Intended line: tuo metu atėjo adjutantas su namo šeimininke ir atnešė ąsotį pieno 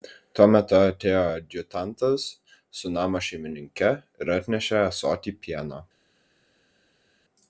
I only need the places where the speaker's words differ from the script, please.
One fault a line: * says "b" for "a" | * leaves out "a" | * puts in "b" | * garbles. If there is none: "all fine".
all fine